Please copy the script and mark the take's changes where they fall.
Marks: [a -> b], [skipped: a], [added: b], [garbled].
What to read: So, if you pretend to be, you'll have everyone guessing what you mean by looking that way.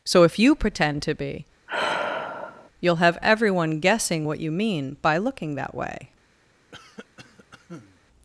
So, if you pretend to be, you'll have everyone guessing what you mean by looking that way.